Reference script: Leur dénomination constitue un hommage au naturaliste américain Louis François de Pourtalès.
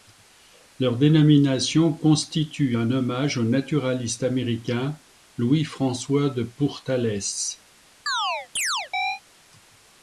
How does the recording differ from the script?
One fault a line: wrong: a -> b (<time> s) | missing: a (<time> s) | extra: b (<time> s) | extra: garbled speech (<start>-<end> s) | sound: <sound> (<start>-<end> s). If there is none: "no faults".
sound: chirp (8.1-9.2 s)